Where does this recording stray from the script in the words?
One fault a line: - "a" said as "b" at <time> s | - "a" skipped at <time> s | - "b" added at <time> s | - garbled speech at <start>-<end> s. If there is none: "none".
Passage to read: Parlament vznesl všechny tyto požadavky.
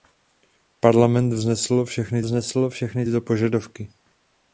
- "vznesl všechny" added at 2.2 s